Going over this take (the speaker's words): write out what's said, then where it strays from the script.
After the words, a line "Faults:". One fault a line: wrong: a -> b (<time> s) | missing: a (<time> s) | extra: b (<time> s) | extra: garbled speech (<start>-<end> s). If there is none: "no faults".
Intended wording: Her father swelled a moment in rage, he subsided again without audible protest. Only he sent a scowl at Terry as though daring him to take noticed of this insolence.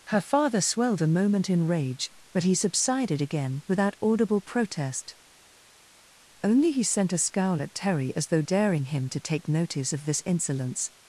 Her father swelled a moment in rage, but he subsided again without audible protest. Only he sent a scowl at Terry as though daring him to take notice of this insolence.
Faults:
extra: but (2.3 s)
wrong: noticed -> notice (9.5 s)